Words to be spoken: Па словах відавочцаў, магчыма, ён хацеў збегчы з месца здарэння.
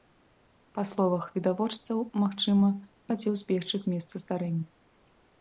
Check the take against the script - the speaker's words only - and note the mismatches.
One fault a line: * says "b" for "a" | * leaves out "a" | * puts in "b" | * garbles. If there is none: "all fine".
* leaves out "ён"